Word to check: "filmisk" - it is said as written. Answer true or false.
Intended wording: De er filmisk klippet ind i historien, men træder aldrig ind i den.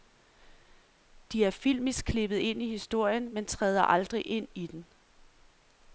true